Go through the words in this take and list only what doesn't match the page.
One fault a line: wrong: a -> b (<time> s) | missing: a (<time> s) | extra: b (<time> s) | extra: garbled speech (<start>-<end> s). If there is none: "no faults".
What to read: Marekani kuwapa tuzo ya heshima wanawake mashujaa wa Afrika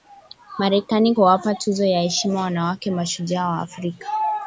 no faults